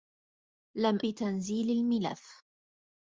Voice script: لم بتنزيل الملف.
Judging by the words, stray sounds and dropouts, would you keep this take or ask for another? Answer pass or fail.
pass